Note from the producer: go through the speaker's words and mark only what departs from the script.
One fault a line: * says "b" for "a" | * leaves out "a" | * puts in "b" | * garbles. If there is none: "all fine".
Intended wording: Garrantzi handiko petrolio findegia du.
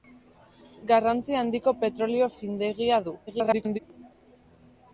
* garbles